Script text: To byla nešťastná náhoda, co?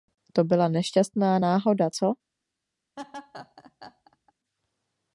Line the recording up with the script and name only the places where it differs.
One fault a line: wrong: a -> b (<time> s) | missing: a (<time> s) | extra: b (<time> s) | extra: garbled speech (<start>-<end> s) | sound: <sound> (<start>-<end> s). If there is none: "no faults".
sound: laugh (3.0-4.3 s)